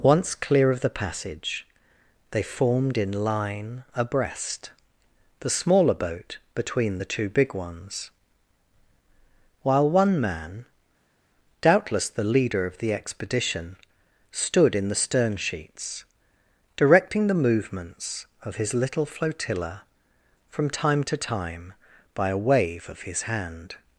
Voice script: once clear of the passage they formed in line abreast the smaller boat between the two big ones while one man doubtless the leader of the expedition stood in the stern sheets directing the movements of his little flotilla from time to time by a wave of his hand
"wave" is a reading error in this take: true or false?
false